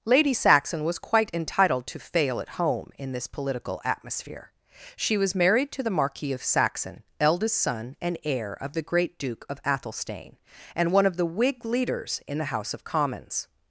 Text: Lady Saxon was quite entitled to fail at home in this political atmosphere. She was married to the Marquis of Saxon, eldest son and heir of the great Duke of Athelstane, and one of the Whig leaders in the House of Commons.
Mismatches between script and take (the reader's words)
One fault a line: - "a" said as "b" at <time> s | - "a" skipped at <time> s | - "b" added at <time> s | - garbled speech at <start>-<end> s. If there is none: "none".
none